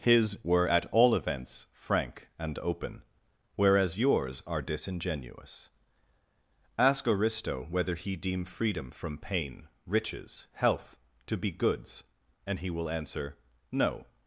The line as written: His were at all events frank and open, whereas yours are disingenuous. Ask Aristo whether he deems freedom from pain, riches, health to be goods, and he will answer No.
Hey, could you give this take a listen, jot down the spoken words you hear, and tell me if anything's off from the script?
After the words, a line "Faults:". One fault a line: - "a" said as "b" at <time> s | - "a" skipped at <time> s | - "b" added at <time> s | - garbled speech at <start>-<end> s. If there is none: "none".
His were at all events frank and open, whereas yours are disingenuous. Ask Aristo whether he deem freedom from pain, riches, health to be goods, and he will answer No.
Faults:
- "deems" said as "deem" at 8.2 s